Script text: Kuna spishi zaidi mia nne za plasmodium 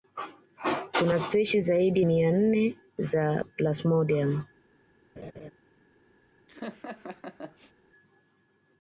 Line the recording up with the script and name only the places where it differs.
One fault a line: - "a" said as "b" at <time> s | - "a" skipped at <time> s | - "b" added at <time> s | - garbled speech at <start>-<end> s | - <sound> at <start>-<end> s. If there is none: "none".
- laugh at 5.2-5.5 s
- laugh at 6.5-7.7 s